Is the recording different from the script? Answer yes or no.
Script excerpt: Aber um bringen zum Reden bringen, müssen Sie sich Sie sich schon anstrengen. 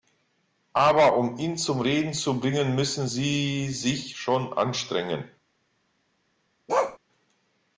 yes